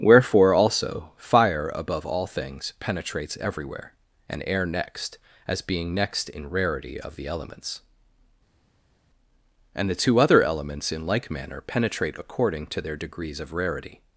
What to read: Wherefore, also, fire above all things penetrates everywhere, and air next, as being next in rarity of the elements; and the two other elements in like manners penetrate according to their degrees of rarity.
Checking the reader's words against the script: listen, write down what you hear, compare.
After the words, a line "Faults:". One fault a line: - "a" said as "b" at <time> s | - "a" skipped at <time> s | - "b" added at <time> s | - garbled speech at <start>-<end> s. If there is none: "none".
Wherefore, also, fire above all things penetrates everywhere, and air next, as being next in rarity of the elements; and the two other elements in like manner penetrate according to their degrees of rarity.
Faults:
- "manners" said as "manner" at 11.3 s